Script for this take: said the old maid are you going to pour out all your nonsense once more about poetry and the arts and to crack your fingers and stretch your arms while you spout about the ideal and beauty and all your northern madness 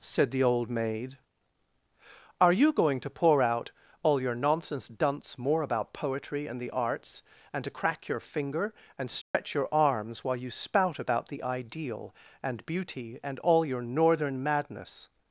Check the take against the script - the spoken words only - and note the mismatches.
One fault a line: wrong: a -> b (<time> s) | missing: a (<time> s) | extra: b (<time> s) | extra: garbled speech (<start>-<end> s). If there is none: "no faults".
wrong: once -> dunce (4.9 s)
wrong: fingers -> finger (8.2 s)